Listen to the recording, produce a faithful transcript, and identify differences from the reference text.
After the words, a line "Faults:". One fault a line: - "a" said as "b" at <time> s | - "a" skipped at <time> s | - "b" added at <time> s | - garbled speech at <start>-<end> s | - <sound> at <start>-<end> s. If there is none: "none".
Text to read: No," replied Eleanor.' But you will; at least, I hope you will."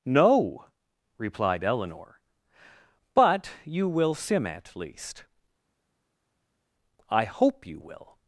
No," replied Eleanor.' But you will; sim at least, I hope you will."
Faults:
- "sim" added at 4.1 s